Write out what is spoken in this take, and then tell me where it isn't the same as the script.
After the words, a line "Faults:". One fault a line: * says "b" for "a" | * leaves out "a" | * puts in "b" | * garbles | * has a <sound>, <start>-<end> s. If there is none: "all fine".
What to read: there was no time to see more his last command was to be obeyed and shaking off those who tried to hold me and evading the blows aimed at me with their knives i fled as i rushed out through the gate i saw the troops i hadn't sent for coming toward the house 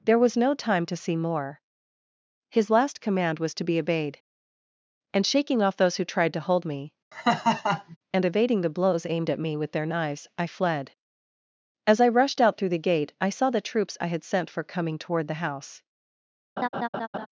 there was no time to see more his last command was to be obeyed and shaking off those who tried to hold me and evading the blows aimed at me with their knives i fled as i rushed out through the gate i saw the troops i had sent for coming toward the house
Faults:
* has a laugh, 7.1-8.0 s
* says "had" for "hadn't"
* has a laugh, 16.6-17.3 s